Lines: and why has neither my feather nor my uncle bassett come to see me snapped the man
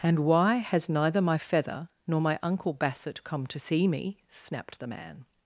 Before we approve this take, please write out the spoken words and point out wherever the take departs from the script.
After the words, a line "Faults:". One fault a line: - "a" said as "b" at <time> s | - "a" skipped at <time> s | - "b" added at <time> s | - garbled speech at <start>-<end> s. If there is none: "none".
and why has neither my feather nor my uncle bassett come to see me snapped the man
Faults:
none